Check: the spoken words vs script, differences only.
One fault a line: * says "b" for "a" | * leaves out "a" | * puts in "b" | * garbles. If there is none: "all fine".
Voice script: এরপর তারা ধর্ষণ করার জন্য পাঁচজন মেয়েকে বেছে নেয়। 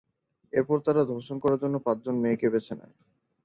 all fine